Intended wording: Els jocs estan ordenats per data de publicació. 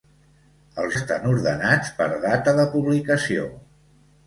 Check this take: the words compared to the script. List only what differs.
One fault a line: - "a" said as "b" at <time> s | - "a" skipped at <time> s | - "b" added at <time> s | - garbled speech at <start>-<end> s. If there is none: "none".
- "jocs" skipped at 0.9 s